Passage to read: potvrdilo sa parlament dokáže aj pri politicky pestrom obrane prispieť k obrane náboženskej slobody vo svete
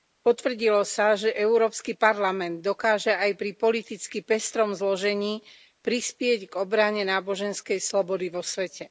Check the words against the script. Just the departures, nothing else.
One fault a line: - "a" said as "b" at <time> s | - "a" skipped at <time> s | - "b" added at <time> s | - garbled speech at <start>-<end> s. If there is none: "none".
- "že európsky" added at 1.1 s
- "obrane" said as "zložení" at 4.7 s